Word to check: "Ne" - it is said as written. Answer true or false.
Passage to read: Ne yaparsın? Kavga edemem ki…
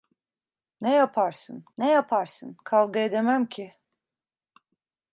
true